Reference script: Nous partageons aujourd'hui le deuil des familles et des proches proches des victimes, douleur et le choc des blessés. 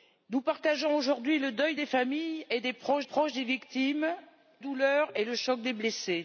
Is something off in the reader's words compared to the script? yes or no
no